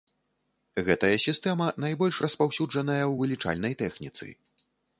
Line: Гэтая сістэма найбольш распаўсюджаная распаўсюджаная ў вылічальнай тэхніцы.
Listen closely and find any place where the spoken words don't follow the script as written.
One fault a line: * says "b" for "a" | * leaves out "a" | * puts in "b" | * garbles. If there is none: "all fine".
* leaves out "распаўсюджаная"